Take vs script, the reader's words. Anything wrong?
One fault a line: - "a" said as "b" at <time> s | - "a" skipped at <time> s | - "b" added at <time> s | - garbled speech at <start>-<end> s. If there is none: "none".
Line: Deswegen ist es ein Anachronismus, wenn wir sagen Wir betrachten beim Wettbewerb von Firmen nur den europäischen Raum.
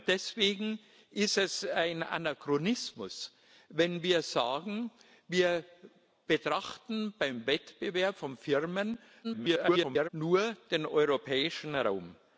- garbled speech at 9.2-10.1 s